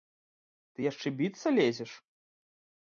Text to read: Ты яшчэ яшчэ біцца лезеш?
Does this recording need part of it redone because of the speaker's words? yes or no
yes